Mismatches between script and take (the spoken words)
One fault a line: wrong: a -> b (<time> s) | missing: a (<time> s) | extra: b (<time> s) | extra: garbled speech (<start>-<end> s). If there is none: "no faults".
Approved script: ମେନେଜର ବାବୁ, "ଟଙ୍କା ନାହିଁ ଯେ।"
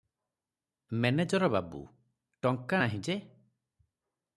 no faults